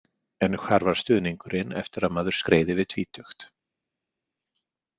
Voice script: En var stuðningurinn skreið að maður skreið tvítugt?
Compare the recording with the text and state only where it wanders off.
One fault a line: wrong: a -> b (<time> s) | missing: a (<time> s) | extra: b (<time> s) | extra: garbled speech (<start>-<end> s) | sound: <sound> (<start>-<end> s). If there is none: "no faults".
extra: hvar (0.6 s)
wrong: skreið -> eftir (1.8 s)
extra: yfir (2.8 s)